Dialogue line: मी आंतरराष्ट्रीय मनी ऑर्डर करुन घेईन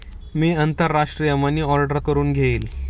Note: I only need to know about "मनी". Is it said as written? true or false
true